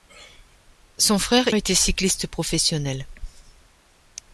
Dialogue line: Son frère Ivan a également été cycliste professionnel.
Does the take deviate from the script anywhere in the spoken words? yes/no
yes